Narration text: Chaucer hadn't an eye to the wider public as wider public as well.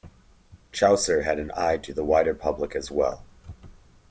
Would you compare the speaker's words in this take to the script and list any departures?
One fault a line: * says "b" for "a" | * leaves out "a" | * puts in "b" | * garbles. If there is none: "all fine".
* says "had" for "hadn't"
* leaves out "wider public as"